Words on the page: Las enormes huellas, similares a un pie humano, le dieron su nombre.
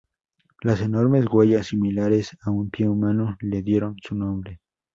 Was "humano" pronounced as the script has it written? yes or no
yes